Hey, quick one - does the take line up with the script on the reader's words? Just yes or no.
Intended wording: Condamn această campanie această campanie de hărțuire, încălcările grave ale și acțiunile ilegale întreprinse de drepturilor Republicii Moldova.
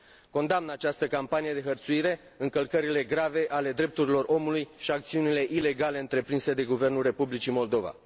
no